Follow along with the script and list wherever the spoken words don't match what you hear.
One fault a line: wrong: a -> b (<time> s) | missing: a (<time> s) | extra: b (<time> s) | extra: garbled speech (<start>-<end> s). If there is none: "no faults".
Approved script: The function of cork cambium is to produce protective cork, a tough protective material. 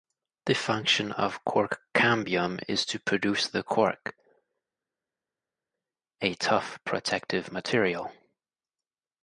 wrong: protective -> the (3.5 s)